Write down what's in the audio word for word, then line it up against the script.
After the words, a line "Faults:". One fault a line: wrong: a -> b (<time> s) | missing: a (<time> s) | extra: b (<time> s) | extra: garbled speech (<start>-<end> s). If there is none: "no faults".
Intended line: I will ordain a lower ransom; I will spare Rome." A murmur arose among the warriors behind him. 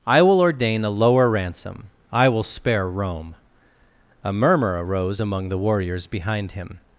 I will ordain a lower ransom; I will spare Rome." A murmur arose among the warriors behind him.
Faults:
no faults